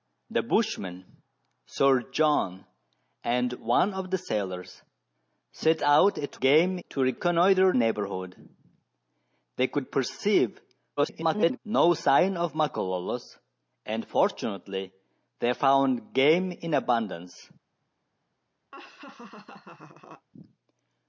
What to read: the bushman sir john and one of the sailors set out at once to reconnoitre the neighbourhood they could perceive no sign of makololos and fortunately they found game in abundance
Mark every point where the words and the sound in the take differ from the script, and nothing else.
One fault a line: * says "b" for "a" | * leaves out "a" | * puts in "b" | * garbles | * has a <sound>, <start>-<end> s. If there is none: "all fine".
* says "game" for "once"
* leaves out "the"
* garbles
* has a laugh, 18.7-20.3 s